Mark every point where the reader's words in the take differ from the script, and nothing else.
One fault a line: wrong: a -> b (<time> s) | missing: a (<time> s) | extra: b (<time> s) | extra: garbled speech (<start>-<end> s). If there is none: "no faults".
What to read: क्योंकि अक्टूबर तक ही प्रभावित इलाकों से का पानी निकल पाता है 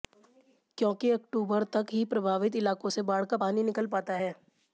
extra: बाढ़ (3.0 s)